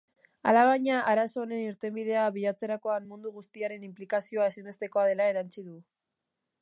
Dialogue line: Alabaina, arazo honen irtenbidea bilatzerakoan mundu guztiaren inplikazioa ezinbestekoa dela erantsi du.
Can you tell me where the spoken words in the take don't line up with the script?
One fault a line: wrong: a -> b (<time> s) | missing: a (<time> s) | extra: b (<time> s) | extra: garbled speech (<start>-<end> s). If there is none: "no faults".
no faults